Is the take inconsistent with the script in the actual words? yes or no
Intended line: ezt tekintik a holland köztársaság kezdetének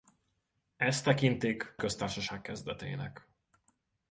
yes